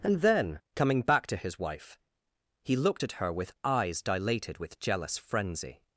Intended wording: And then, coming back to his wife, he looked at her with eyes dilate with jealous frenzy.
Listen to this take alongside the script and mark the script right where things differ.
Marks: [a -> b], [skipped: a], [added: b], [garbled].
And then, coming back to his wife, he looked at her with eyes [dilate -> dilated] with jealous frenzy.